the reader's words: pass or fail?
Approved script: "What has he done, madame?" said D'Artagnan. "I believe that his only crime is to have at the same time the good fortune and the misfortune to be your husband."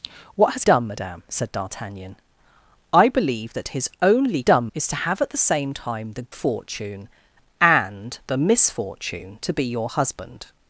fail